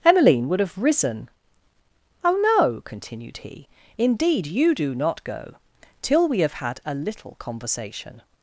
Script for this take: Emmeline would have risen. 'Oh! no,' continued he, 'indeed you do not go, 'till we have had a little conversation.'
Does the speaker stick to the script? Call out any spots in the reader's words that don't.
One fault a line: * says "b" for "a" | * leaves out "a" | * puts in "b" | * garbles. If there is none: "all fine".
all fine